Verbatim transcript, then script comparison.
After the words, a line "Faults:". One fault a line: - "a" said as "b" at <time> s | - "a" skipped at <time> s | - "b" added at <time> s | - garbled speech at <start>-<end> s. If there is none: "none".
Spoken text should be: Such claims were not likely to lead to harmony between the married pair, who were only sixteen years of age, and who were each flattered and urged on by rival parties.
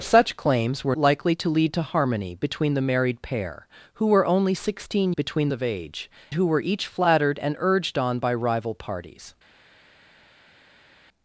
Such claims were likely to lead to harmony between the married pair, who were only sixteen between of age, who were each flattered and urged on by rival parties.
Faults:
- "not" skipped at 0.9 s
- "years" said as "between" at 5.1 s
- "and" skipped at 6.1 s